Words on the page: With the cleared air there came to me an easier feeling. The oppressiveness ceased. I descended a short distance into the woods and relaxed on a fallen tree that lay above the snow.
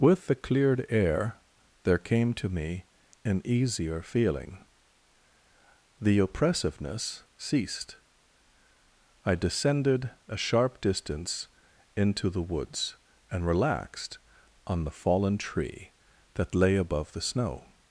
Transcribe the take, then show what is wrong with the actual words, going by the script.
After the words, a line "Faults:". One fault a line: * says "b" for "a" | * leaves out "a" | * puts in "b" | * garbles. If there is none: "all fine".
With the cleared air there came to me an easier feeling. The oppressiveness ceased. I descended a sharp distance into the woods and relaxed on the fallen tree that lay above the snow.
Faults:
* says "sharp" for "short"
* says "the" for "a"